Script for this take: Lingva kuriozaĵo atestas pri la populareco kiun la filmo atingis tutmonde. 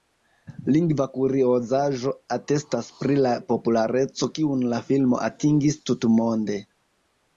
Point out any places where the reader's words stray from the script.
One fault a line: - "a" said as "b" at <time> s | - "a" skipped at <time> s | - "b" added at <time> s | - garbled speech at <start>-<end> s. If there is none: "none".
none